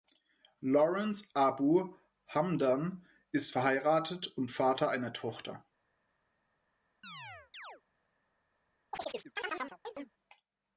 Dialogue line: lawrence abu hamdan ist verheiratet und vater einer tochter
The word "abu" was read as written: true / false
true